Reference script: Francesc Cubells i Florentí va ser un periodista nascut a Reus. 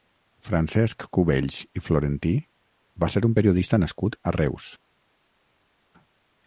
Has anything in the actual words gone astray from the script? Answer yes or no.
no